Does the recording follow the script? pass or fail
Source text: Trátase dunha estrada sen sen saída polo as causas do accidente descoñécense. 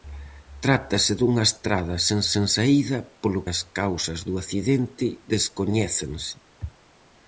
pass